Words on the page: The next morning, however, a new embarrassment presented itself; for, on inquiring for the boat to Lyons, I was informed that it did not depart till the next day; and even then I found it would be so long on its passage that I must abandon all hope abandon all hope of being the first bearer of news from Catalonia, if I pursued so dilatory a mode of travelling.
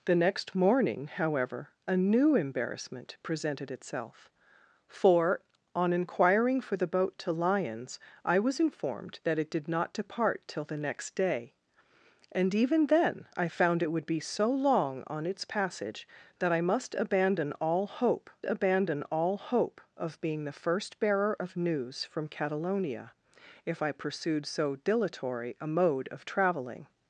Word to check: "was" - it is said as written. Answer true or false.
true